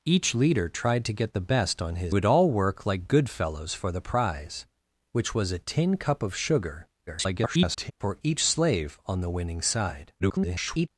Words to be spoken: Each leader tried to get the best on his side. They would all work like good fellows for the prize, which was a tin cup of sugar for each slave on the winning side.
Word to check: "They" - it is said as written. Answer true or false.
false